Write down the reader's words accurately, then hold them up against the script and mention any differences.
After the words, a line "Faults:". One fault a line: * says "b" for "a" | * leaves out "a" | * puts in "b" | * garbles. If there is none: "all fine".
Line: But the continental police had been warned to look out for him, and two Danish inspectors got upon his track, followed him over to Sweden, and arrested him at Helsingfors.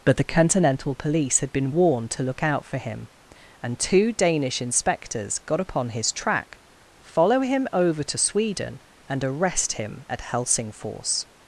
But the continental police had been warned to look out for him, and two Danish inspectors got upon his track, follow him over to Sweden, and arrest him at Helsingfors.
Faults:
* says "follow" for "followed"
* says "arrest" for "arrested"